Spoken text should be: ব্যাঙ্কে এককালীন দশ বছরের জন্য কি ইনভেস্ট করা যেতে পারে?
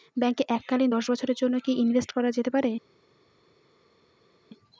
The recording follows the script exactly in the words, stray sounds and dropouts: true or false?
true